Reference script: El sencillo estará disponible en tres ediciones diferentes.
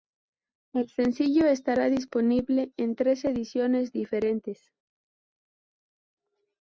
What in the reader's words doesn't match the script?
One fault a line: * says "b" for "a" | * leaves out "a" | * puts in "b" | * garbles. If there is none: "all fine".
all fine